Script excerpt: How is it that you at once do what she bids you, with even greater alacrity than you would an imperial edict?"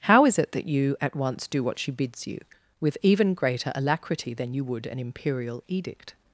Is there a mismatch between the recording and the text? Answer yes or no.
no